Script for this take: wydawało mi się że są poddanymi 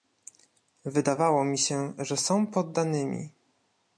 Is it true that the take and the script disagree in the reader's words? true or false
false